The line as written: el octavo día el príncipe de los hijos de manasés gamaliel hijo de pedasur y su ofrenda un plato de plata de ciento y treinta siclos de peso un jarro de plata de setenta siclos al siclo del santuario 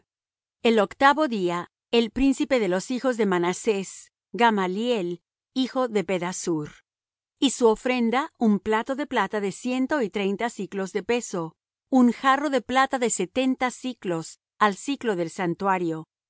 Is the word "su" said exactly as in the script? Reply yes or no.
yes